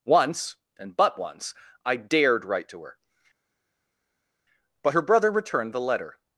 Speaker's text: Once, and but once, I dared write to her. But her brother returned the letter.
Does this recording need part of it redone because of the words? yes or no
no